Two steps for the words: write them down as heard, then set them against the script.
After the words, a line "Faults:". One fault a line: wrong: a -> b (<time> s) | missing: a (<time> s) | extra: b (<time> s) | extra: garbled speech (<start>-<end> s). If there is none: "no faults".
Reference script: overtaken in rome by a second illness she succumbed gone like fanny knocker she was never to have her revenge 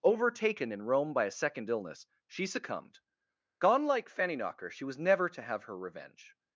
overtaken in rome by a second illness she succumbed gone like fanny knocker she was never to have her revenge
Faults:
no faults